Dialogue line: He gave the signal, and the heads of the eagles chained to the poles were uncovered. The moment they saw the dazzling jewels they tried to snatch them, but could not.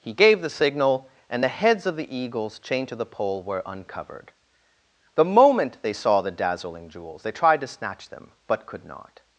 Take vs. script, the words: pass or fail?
fail